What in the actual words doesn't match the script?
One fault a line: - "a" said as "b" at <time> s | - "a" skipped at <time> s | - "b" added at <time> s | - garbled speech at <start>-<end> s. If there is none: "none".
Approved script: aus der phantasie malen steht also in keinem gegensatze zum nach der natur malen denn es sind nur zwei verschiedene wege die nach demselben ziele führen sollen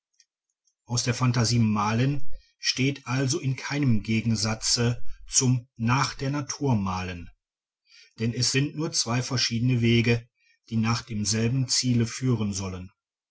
none